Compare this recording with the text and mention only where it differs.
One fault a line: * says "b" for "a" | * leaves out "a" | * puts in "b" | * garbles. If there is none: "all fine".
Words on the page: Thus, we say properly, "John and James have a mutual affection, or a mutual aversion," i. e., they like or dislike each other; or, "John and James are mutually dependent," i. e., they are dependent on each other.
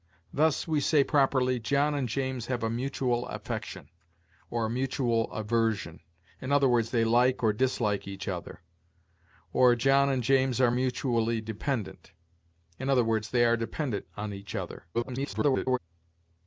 * garbles